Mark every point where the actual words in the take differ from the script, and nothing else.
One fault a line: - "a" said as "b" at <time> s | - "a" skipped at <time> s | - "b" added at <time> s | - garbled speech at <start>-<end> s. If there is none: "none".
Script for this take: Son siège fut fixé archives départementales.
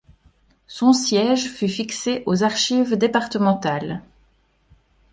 - "aux" added at 2.2 s